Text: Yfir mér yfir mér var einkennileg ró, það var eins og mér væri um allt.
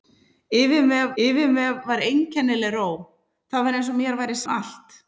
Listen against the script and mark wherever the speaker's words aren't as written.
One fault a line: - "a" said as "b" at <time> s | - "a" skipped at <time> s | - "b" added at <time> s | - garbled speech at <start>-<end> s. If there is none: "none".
none